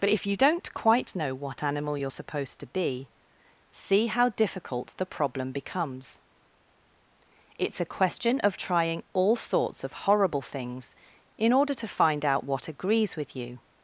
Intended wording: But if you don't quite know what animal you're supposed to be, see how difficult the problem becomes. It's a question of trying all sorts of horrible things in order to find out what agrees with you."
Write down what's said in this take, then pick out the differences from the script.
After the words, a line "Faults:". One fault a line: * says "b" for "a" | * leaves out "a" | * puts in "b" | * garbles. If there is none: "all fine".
But if you don't quite know what animal you're supposed to be, see how difficult the problem becomes. It's a question of trying all sorts of horrible things in order to find out what agrees with you."
Faults:
all fine